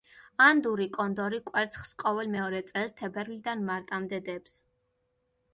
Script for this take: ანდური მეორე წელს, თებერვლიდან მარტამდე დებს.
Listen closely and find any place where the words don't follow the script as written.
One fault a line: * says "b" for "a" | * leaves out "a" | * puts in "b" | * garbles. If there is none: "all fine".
* puts in "კონდორი კვერცხს ყოველ"